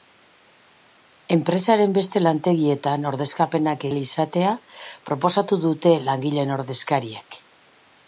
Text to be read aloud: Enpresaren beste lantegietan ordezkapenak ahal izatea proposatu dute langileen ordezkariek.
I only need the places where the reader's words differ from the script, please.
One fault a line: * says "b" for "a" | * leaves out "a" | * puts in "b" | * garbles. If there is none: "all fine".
all fine